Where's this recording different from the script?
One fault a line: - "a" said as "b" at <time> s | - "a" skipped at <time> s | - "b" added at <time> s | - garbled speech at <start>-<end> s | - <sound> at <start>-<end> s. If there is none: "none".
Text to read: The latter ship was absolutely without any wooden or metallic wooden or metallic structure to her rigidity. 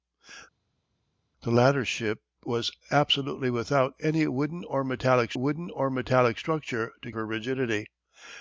none